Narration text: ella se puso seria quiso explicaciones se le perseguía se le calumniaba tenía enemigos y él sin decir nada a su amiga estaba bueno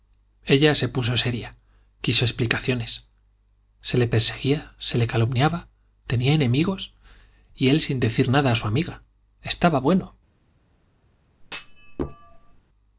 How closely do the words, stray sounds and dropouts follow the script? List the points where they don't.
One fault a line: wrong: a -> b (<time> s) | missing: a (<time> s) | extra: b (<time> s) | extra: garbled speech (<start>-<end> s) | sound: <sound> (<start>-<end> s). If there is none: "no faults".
sound: thud (11.4-12.6 s)